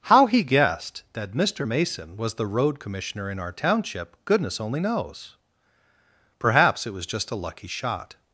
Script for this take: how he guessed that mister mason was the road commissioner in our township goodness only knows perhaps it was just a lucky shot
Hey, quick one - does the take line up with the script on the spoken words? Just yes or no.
yes